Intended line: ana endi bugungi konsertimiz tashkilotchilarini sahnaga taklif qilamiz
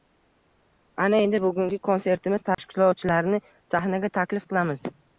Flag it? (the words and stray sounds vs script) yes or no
yes